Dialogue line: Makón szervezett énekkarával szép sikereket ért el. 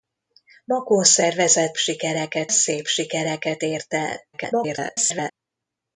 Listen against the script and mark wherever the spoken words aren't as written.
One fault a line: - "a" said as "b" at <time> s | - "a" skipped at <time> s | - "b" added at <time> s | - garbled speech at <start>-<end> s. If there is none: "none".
- "énekkarával" said as "sikereket" at 1.8 s
- garbled speech at 4.3-5.3 s